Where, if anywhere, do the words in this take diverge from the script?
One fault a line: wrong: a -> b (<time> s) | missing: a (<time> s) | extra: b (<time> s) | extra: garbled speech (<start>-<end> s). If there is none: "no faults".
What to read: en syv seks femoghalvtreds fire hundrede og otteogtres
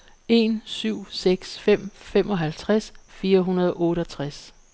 extra: fem (1.6 s)